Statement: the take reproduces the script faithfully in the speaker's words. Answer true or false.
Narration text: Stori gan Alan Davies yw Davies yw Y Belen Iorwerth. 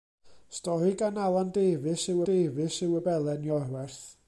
true